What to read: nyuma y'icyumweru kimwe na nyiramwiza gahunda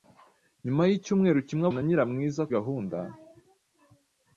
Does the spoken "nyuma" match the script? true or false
true